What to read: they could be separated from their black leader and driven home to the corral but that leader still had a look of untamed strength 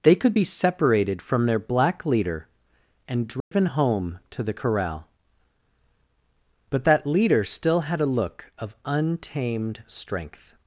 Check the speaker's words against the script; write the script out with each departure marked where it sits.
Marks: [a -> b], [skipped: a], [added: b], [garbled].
they could be separated from their black leader and driven home to the corral but that leader still had a look of untamed strength